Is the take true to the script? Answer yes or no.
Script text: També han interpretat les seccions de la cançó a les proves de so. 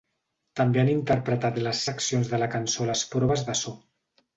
yes